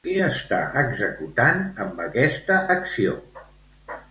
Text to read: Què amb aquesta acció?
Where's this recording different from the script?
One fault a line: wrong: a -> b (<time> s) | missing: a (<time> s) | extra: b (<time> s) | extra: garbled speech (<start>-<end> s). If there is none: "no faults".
extra: està executant (0.3 s)